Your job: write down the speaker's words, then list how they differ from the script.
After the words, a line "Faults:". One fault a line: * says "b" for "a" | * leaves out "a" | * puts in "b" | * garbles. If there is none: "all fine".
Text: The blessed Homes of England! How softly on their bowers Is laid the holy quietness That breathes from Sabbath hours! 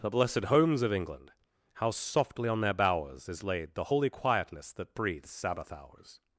The blessed Homes of England! How softly on their bowers Is laid the holy quietness That breathes Sabbath hours!
Faults:
* leaves out "from"